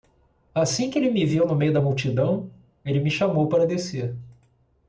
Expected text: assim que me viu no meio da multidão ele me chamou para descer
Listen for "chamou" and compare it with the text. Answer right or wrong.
right